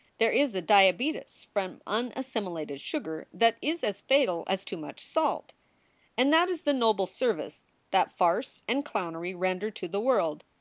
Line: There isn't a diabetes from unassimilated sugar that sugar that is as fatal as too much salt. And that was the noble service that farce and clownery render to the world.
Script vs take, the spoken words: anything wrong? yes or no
yes